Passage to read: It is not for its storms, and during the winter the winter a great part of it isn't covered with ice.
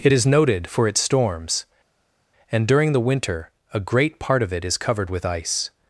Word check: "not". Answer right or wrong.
wrong